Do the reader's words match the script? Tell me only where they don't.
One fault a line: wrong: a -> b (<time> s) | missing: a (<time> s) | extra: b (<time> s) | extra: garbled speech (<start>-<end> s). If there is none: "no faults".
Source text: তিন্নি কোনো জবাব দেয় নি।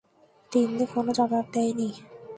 no faults